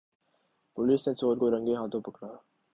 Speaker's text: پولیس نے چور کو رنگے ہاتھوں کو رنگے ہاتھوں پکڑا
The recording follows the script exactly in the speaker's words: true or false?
false